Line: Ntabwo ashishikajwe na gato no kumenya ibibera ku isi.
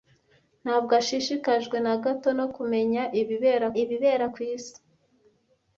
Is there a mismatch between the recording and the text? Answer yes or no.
yes